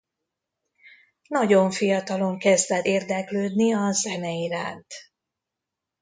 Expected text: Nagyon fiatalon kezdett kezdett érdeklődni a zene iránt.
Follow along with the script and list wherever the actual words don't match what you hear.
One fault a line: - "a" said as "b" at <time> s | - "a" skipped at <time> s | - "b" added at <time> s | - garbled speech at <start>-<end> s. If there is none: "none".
- "kezdett" skipped at 2.9 s